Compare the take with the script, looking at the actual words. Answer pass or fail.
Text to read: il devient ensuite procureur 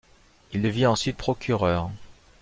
pass